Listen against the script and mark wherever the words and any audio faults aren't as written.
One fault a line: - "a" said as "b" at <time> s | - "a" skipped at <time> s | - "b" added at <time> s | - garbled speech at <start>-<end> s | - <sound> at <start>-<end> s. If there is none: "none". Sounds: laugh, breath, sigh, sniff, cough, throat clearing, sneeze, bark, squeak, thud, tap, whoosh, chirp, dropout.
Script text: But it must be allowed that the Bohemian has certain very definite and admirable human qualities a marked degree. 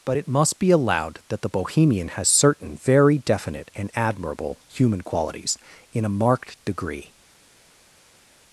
- "in" added at 5.9 s